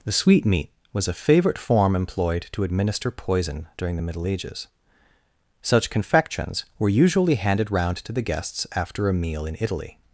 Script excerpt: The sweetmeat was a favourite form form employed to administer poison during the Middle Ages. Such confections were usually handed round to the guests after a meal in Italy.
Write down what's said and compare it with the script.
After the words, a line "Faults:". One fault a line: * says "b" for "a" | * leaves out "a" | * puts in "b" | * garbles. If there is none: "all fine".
The sweetmeat was a favourite form employed to administer poison during the Middle Ages. Such confections were usually handed round to the guests after a meal in Italy.
Faults:
* leaves out "form"